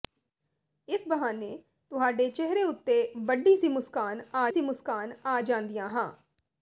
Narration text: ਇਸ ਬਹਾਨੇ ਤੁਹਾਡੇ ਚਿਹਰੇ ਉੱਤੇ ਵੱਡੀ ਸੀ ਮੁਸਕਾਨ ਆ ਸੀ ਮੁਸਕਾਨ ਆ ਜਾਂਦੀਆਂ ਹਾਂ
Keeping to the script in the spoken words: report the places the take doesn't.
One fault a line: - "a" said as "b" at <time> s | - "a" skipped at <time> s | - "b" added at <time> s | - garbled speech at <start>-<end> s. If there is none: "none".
none